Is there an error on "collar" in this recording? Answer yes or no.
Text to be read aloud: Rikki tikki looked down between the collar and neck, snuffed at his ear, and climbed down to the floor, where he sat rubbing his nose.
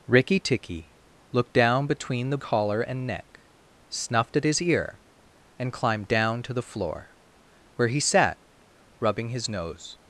no